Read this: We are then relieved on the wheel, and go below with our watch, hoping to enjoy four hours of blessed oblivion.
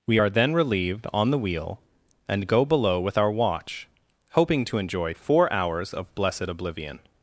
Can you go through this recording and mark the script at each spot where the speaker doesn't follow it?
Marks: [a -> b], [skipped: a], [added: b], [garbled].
We are then relieved on the wheel, and go below with our watch, hoping to enjoy four hours of blessed oblivion.